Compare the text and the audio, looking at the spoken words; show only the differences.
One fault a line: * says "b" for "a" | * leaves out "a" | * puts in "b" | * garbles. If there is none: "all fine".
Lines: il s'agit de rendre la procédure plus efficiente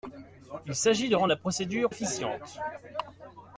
* leaves out "plus"